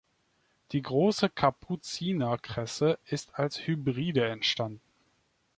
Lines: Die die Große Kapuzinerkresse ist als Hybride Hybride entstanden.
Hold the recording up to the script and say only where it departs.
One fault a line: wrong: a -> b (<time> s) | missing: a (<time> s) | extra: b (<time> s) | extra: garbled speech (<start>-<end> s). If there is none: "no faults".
missing: die (0.8 s)
missing: Hybride (4.3 s)